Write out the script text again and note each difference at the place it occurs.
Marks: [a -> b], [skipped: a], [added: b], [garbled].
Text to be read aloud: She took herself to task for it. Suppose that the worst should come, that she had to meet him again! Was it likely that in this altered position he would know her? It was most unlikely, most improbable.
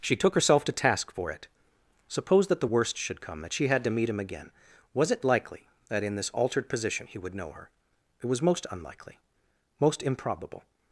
She took herself to task for it. Suppose that the worst should come, that she had to meet him again! Was it likely that in this altered position he would know her? It was most unlikely, most improbable.